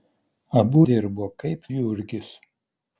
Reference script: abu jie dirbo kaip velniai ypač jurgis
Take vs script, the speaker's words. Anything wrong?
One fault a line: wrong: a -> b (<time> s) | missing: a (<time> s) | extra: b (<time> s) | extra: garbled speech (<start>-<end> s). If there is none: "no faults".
missing: jie (0.8 s)
missing: velniai ypač (1.6 s)